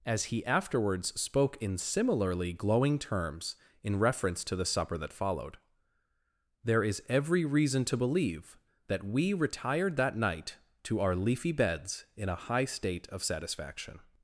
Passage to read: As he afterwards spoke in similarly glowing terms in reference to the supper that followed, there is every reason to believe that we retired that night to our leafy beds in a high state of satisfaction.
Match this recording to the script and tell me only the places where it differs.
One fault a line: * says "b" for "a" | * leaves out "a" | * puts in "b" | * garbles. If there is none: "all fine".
all fine